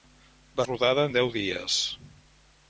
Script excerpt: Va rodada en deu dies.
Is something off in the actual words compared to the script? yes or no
no